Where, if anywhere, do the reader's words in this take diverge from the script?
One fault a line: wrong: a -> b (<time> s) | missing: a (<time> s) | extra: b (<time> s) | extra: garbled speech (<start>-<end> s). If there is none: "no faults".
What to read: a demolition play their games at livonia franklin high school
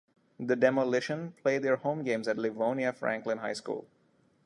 wrong: a -> the (0.4 s)
extra: home (1.7 s)